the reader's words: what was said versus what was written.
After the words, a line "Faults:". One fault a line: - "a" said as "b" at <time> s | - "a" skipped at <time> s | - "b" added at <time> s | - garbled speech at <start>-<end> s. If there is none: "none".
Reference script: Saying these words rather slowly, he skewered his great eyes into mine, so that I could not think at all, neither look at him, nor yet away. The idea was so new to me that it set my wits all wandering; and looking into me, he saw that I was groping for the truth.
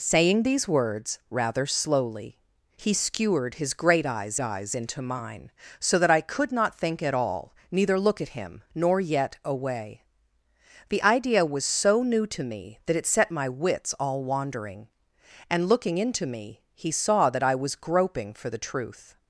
Saying these words rather slowly, he skewered his great eyes eyes into mine, so that I could not think at all, neither look at him, nor yet away. The idea was so new to me that it set my wits all wandering; and looking into me, he saw that I was groping for the truth.
Faults:
- "eyes" added at 4.4 s